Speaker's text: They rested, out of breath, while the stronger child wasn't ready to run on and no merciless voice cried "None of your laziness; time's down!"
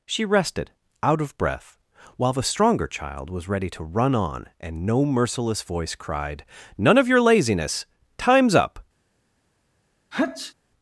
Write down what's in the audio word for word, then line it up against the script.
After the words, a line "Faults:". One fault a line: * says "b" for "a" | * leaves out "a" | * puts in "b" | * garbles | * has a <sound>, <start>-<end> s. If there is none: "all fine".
She rested, out of breath, while the stronger child was ready to run on and no merciless voice cried "None of your laziness; time's up!"
Faults:
* says "She" for "They"
* says "was" for "wasn't"
* says "up" for "down"
* has a sneeze, 10.1-10.5 s